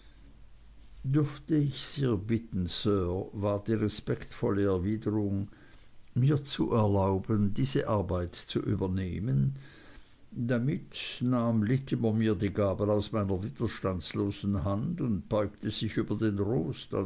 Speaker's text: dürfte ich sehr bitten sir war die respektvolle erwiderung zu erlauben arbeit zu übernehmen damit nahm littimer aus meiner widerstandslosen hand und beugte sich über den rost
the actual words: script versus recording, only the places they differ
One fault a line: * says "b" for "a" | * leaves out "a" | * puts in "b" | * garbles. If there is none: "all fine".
* puts in "mir"
* puts in "diese"
* puts in "mir die gabel"